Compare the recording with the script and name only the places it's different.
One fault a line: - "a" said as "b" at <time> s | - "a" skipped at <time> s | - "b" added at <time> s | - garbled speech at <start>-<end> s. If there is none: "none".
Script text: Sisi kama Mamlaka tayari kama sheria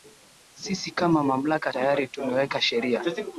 - "kama" said as "tumeweka" at 2.1 s